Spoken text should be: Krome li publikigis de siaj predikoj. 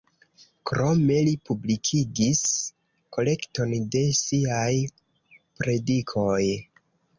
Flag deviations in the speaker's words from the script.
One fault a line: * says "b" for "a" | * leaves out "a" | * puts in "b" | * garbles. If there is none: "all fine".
* puts in "kolekton"